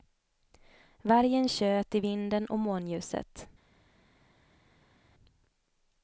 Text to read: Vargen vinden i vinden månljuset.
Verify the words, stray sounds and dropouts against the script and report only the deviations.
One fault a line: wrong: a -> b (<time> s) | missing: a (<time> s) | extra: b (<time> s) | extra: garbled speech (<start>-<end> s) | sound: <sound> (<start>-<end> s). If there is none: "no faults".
wrong: vinden -> tjöt (1.5 s)
extra: och (2.5 s)